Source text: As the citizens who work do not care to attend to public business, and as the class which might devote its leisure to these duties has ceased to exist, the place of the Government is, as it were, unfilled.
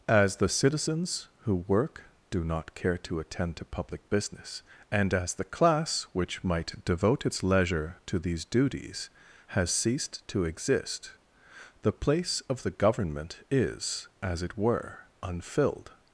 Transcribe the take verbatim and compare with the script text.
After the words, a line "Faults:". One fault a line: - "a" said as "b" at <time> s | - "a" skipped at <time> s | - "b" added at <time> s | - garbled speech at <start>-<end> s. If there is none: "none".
As the citizens who work do not care to attend to public business, and as the class which might devote its leisure to these duties has ceased to exist, the place of the Government is, as it were, unfilled.
Faults:
none